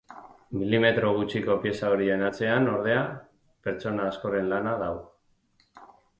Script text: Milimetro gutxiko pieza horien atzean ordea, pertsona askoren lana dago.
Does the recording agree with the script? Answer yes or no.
yes